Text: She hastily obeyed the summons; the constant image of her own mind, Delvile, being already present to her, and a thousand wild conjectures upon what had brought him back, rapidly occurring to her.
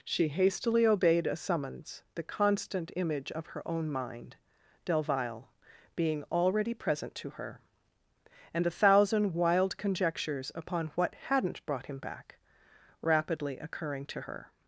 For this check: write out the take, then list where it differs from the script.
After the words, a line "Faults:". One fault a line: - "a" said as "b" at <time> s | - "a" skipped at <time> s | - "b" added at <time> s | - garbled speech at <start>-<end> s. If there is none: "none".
She hastily obeyed a summons; the constant image of her own mind, Delvile, being already present to her, and a thousand wild conjectures upon what hadn't brought him back, rapidly occurring to her.
Faults:
- "the" said as "a" at 1.3 s
- "had" said as "hadn't" at 11.1 s